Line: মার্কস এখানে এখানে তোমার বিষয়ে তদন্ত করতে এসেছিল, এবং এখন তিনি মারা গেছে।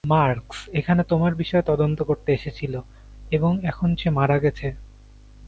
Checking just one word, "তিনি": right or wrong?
wrong